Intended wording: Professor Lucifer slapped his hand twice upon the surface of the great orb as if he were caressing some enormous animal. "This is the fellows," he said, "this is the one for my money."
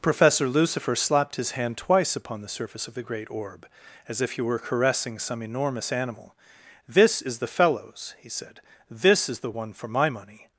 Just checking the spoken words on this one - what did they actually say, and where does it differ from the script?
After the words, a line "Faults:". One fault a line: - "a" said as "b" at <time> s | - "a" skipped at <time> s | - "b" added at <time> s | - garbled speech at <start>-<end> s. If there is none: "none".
Professor Lucifer slapped his hand twice upon the surface of the great orb as if he were caressing some enormous animal. "This is the fellows," he said, "this is the one for my money."
Faults:
none